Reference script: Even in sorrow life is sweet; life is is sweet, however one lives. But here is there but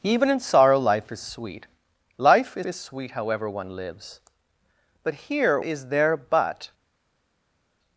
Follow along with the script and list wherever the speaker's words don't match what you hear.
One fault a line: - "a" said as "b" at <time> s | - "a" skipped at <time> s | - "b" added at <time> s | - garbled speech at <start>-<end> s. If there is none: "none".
none